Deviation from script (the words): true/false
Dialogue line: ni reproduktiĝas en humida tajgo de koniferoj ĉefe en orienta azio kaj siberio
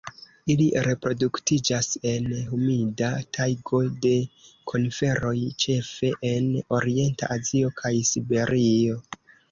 true